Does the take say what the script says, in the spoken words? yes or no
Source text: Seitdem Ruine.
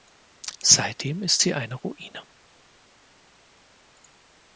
no